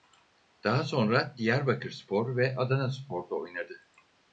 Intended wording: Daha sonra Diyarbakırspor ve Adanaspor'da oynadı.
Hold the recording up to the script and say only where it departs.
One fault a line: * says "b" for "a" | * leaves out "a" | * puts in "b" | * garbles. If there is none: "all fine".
all fine